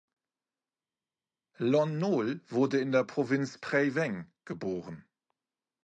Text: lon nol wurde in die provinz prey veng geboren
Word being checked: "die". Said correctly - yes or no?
no